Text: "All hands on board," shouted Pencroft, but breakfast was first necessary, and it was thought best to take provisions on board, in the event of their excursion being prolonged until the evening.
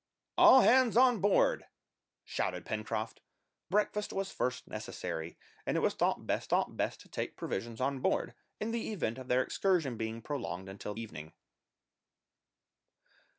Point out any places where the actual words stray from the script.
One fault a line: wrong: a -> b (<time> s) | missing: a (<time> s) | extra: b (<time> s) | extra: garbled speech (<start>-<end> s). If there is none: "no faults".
missing: but (3.2 s)
extra: thought best (6.5 s)
missing: the (11.0 s)